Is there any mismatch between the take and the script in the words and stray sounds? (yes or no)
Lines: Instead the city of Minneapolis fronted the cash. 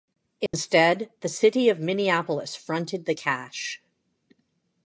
yes